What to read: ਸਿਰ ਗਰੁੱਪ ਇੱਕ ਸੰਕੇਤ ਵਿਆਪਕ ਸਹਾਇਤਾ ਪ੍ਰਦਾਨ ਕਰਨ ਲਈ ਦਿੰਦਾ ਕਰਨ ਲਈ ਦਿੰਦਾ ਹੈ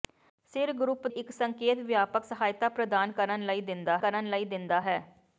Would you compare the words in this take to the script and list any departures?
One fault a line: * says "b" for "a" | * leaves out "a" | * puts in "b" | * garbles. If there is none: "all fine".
all fine